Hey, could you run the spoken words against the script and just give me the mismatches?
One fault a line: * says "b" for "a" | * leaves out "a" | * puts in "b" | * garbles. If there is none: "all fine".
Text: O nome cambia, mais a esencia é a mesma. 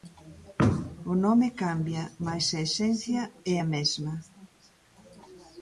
all fine